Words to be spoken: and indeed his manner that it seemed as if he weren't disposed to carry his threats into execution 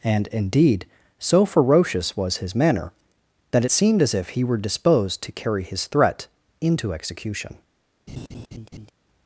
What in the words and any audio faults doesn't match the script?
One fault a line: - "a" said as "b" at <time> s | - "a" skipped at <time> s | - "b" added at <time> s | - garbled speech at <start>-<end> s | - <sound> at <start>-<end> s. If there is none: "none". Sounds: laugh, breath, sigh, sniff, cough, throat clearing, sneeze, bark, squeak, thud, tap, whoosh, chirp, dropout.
- "so ferocious was" added at 1.2 s
- "weren't" said as "were" at 4.4 s
- "threats" said as "threat" at 5.9 s
- laugh at 8.1-8.9 s